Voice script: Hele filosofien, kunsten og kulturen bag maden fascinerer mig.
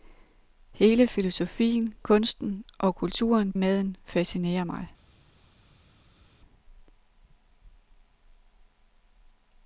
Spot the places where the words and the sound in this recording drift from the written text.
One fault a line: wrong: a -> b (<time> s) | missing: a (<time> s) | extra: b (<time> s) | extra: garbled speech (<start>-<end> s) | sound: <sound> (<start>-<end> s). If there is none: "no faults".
missing: bag (3.5 s)